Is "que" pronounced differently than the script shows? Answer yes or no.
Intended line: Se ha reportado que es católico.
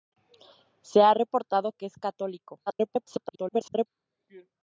no